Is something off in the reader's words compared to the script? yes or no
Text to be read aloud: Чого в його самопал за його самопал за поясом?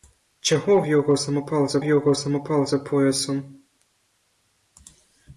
no